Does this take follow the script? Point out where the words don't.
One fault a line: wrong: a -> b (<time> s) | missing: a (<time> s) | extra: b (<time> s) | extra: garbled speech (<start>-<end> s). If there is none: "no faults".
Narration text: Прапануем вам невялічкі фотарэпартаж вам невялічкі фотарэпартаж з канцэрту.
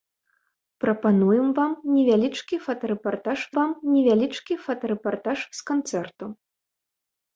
no faults